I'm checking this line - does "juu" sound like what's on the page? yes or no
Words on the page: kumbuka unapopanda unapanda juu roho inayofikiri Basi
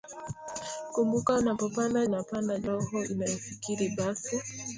yes